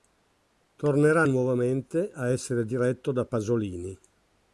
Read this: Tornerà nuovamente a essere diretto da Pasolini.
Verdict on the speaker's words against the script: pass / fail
pass